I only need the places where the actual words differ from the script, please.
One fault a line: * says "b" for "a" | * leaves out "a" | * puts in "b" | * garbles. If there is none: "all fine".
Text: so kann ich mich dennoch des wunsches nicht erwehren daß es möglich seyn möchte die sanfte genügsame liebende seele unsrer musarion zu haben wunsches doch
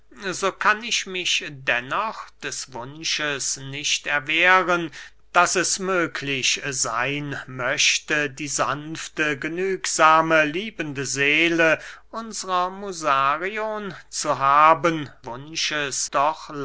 all fine